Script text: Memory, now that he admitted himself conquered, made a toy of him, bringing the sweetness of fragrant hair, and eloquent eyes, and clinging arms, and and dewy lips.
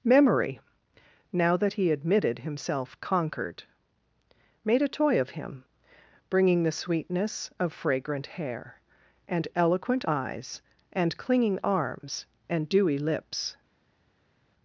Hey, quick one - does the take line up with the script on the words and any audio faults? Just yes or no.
no